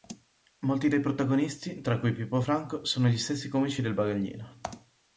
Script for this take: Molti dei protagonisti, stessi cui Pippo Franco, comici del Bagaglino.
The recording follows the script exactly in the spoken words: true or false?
false